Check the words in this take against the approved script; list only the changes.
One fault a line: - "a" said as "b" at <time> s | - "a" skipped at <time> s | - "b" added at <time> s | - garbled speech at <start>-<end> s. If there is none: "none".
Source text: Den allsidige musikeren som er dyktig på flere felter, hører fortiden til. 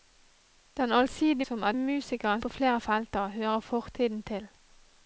- "musikeren" skipped at 1.4 s
- "dyktig" said as "musikeren" at 1.7 s